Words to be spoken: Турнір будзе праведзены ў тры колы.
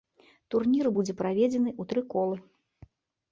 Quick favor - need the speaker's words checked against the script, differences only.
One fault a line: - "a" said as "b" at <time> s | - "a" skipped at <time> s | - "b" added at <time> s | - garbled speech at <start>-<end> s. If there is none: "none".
none